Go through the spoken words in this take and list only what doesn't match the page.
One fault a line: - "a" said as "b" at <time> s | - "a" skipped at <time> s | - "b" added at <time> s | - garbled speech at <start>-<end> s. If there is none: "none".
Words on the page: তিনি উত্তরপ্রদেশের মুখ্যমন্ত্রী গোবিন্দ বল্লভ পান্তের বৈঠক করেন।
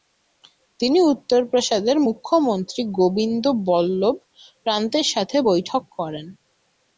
- "সাথে" added at 5.1 s